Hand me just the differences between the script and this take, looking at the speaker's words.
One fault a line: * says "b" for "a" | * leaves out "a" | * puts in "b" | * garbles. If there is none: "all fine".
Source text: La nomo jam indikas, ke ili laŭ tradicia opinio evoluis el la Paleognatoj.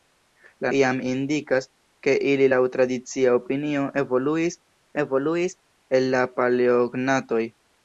* leaves out "nomo"
* puts in "evoluis"